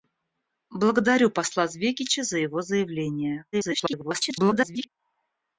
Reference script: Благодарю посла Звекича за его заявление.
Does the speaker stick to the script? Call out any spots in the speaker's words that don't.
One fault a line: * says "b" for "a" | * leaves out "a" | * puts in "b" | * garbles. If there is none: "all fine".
* garbles